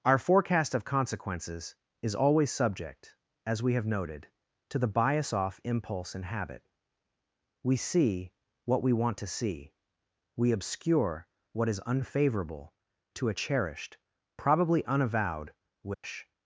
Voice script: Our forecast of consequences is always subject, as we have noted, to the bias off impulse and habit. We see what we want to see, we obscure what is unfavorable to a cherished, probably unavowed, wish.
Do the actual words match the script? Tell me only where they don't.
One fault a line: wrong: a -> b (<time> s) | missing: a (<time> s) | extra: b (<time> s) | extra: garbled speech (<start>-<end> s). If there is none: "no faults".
no faults